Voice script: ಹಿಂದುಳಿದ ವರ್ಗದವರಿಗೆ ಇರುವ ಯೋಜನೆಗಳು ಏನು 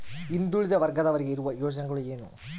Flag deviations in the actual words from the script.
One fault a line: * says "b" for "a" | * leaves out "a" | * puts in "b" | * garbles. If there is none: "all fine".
all fine